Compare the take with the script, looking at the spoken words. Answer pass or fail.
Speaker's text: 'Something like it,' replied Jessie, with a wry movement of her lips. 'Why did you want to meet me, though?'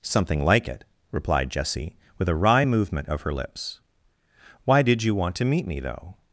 pass